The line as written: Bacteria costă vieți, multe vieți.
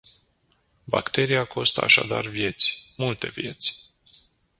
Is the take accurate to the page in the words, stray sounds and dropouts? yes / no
no